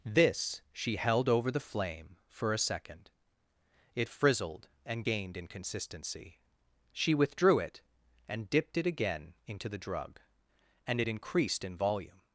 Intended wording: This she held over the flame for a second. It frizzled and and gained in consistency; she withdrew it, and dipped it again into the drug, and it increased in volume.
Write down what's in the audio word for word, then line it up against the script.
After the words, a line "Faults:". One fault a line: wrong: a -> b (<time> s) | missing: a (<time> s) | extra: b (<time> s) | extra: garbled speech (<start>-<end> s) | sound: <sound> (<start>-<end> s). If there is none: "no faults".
This she held over the flame for a second. It frizzled and gained in consistency; she withdrew it, and dipped it again into the drug, and it increased in volume.
Faults:
missing: and (5.0 s)